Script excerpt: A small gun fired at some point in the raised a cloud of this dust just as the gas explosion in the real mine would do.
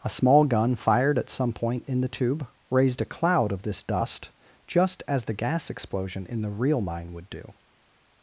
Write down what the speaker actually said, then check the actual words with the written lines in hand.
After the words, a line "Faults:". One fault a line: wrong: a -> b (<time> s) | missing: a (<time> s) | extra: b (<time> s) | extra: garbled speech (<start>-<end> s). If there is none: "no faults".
A small gun fired at some point in the tube raised a cloud of this dust just as the gas explosion in the real mine would do.
Faults:
extra: tube (2.1 s)